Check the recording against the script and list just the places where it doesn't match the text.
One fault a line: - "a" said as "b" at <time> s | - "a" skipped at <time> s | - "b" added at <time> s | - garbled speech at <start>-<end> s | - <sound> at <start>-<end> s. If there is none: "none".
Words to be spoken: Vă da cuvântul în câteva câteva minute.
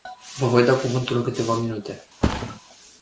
- "voi" added at 0.5 s
- "câteva" skipped at 1.5 s
- thud at 2.2-2.6 s